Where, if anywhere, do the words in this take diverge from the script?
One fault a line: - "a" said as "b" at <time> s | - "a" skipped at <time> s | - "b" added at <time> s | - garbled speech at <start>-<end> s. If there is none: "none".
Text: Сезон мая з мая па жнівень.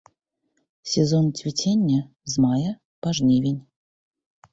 - "мая" said as "цвіцення" at 1.3 s